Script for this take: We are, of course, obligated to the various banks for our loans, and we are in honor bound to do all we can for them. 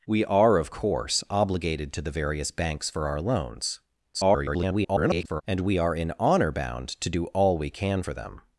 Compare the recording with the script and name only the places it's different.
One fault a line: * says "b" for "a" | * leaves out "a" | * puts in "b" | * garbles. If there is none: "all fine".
* garbles